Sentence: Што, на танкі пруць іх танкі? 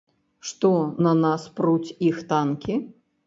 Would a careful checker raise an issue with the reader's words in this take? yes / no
yes